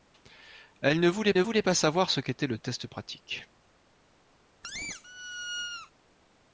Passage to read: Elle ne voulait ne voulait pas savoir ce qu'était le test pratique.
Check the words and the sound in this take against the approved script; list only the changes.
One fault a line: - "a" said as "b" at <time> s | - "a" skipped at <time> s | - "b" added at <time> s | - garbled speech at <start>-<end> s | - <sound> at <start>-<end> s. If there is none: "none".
- squeak at 4.6-5.9 s